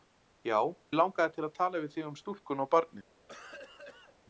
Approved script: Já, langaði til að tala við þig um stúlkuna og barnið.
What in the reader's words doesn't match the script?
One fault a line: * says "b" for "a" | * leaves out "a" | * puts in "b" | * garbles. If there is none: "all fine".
all fine